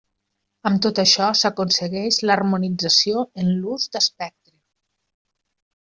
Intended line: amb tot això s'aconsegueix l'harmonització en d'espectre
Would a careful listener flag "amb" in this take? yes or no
no